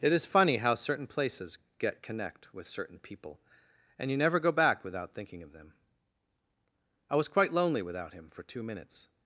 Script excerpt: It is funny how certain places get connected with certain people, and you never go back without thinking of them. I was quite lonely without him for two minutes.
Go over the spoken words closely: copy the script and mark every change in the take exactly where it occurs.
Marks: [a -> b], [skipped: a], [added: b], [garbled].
It is funny how certain places get [connected -> connect] with certain people, and you never go back without thinking of them. I was quite lonely without him for two minutes.